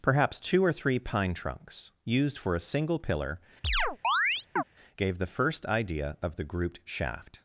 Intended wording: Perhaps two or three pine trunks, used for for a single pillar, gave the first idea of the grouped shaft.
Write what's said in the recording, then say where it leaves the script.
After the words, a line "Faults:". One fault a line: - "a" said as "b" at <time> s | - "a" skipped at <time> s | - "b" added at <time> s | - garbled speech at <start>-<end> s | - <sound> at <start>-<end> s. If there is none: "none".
Perhaps two or three pine trunks, used for a single pillar, gave the first idea of the grouped shaft.
Faults:
- "for" skipped at 2.5 s
- chirp at 3.6-4.6 s